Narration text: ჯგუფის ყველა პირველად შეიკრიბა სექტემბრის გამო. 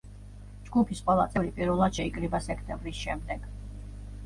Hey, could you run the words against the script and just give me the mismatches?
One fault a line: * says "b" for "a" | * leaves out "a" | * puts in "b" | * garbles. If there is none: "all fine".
* puts in "წევრი"
* says "შემდეგ" for "გამო"